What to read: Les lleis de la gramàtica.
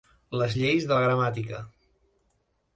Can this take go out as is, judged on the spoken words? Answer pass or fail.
pass